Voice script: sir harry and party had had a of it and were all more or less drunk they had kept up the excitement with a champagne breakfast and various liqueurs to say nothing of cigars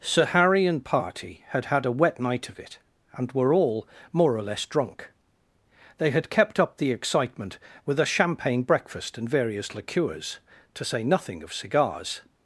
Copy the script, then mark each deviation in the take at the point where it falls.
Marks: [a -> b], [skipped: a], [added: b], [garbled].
sir harry and party had had a [added: wet night] of it and were all more or less drunk they had kept up the excitement with a champagne breakfast and various liqueurs to say nothing of cigars